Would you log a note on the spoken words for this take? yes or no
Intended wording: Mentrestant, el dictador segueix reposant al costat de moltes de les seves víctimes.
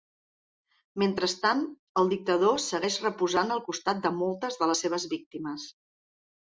no